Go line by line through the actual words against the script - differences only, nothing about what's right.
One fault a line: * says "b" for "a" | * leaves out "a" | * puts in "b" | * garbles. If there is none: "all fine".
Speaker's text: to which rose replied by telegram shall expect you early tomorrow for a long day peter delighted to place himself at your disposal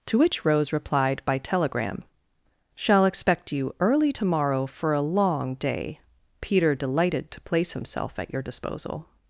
all fine